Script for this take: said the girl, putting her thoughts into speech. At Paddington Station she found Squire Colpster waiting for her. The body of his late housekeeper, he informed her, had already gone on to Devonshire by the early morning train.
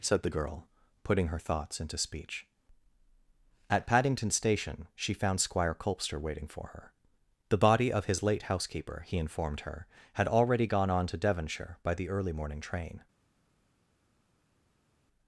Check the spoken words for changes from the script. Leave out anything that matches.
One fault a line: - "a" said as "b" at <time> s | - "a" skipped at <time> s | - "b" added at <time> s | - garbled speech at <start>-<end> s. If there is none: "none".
none